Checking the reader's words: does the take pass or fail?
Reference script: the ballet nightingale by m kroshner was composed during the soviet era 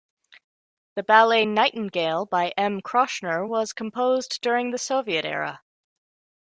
pass